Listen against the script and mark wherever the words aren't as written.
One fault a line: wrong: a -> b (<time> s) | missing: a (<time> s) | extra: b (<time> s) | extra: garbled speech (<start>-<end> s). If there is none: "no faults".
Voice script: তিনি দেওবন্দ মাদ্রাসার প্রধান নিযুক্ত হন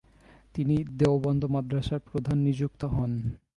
no faults